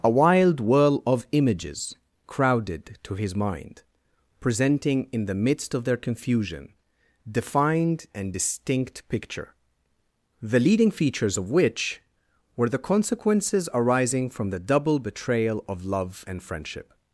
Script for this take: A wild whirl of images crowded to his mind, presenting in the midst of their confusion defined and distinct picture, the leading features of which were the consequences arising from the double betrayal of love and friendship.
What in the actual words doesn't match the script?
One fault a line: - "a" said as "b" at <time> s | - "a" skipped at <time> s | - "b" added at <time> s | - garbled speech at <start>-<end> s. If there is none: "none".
none